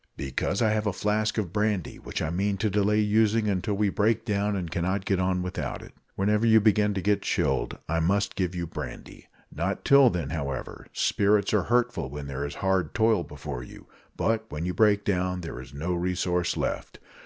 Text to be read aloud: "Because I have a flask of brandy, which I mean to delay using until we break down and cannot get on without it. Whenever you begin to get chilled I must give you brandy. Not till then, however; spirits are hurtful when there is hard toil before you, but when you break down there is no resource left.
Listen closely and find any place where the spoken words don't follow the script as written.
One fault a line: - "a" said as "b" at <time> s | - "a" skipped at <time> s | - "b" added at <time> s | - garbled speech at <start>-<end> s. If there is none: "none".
none